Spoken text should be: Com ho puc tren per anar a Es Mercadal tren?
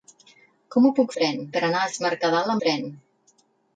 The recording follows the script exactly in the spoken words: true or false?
true